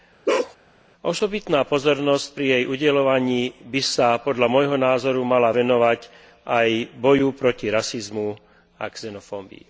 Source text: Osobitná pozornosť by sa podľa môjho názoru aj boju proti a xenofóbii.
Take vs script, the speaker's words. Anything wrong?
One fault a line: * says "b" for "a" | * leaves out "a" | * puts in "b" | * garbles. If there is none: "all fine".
* puts in "pri jej udeľovaní"
* puts in "mala venovať"
* puts in "rasizmu"